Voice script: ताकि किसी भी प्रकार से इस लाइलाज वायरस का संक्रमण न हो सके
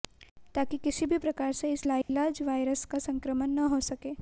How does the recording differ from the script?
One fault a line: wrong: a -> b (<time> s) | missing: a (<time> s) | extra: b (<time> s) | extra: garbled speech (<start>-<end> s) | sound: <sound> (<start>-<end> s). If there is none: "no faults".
sound: dropout (2.0-2.1 s)